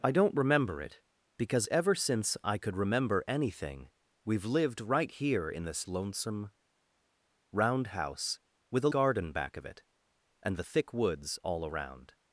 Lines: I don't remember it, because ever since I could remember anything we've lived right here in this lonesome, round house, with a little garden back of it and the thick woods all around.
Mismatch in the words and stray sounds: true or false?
true